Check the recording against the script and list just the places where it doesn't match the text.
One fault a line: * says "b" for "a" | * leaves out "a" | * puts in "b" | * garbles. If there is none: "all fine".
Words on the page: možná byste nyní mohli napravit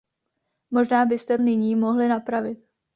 all fine